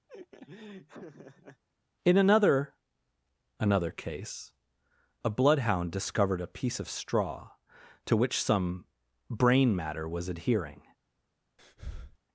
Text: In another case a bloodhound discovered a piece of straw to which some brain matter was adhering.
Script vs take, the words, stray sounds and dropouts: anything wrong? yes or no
yes